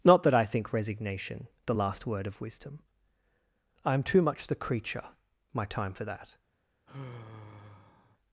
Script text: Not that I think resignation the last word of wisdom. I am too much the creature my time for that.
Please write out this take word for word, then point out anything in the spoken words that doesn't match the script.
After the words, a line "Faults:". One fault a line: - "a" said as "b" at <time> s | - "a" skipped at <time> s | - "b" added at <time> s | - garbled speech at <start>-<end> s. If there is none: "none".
Not that I think resignation the last word of wisdom. I am too much the creature my time for that.
Faults:
none